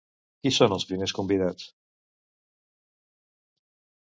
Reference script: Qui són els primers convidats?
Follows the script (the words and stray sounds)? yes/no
yes